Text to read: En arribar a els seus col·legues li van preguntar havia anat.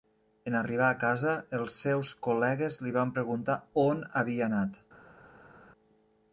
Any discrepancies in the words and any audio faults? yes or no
yes